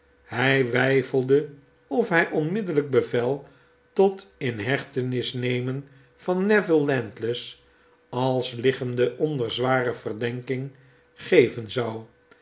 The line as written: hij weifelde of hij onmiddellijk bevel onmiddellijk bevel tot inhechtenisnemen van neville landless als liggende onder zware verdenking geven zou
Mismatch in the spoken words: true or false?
true